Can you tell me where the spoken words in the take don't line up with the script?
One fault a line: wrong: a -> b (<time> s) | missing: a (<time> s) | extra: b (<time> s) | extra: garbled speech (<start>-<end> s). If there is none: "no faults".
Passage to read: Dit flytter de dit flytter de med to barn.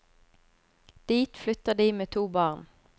missing: dit flytter de (1.9 s)